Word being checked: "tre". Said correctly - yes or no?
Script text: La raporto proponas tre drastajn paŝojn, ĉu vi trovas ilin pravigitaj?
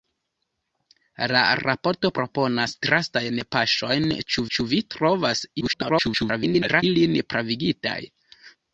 no